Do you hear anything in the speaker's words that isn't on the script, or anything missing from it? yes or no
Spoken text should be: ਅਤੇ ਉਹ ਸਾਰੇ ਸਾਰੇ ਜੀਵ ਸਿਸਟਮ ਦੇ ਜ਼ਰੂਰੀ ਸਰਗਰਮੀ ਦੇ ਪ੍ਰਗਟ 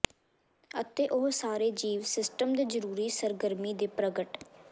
yes